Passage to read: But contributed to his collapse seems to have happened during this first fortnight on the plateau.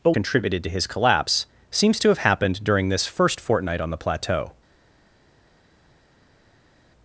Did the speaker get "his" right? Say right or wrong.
right